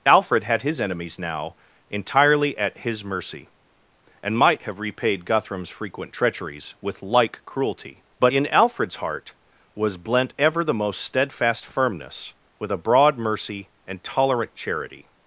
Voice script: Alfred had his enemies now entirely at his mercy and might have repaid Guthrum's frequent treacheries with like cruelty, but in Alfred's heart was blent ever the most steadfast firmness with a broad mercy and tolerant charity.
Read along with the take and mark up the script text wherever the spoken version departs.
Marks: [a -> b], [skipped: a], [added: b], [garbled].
Alfred had his enemies now entirely at his mercy and might have repaid Guthrum's frequent treacheries with like cruelty, but in Alfred's heart was blent ever the most steadfast firmness with a broad mercy and tolerant charity.